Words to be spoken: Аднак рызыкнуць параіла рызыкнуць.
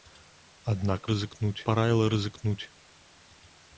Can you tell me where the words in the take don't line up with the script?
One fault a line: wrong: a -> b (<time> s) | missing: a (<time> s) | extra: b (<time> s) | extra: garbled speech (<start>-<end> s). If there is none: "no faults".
no faults